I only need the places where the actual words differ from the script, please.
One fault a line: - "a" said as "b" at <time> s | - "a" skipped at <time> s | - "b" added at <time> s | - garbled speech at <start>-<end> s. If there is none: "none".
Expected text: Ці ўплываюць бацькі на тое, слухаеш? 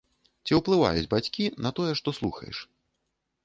- "што" added at 2.0 s